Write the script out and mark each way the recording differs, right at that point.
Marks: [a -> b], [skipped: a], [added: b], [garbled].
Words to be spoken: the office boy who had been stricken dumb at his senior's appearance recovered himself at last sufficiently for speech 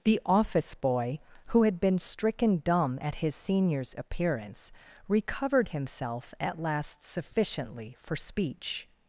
the office boy who had been stricken dumb at his senior's appearance recovered himself at last sufficiently for speech